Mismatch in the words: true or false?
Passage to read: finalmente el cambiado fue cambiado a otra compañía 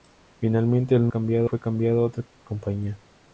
false